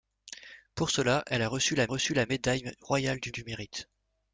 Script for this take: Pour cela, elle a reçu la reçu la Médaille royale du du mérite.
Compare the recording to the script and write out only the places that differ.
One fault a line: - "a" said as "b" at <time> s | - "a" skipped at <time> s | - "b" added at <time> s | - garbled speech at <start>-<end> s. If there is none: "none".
none